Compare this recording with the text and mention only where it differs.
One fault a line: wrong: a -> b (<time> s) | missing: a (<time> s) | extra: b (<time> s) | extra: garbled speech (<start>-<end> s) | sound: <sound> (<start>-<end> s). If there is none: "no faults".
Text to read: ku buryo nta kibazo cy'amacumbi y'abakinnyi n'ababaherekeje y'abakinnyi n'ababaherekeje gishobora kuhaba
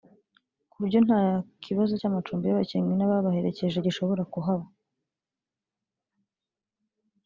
missing: y'abakinnyi n'ababaherekeje (3.8 s)